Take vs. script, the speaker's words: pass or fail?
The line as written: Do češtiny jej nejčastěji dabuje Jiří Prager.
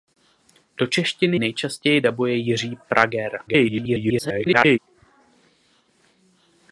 fail